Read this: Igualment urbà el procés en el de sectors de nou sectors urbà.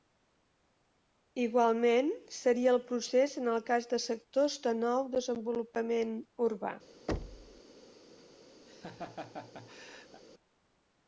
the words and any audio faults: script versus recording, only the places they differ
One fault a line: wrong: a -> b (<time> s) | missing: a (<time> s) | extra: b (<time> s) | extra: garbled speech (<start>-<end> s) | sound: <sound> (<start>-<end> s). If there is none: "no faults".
wrong: urbà -> seria (2.4 s)
extra: cas (3.7 s)
wrong: sectors -> desenvolupament (5.2 s)
sound: thud (7.1-7.6 s)
sound: laugh (8.7-10.2 s)